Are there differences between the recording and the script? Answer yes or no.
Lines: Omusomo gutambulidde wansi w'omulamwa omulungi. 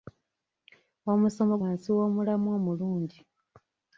yes